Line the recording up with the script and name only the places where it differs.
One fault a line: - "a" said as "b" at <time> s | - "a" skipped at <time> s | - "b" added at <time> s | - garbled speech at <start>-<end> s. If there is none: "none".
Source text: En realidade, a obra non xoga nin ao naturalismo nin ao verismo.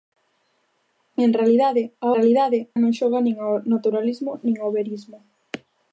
- "obra" said as "realidade" at 2.2 s